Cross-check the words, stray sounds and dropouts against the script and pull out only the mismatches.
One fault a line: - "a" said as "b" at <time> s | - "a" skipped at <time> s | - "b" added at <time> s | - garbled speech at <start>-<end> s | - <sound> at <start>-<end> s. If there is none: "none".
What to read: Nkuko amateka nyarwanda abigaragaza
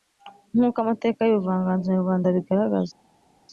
- "y'ubuvanganzo" added at 1.2 s